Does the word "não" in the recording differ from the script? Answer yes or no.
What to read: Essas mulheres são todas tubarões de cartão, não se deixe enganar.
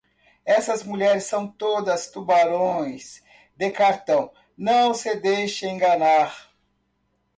no